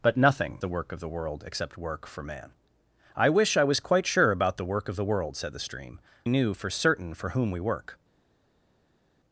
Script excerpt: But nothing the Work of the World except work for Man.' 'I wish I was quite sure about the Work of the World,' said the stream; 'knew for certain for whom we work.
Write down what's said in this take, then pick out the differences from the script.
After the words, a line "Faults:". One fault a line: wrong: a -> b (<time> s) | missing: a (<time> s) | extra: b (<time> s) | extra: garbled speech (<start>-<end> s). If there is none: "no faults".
But nothing the Work of the World except work for Man.' 'I wish I was quite sure about the Work of the World,' said the stream; 'knew for certain for whom we work.
Faults:
no faults